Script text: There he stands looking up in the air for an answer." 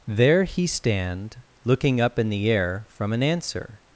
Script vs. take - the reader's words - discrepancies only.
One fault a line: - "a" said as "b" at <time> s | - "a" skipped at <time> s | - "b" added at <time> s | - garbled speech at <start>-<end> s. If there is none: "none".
- "stands" said as "stand" at 0.7 s
- "for" said as "from" at 2.9 s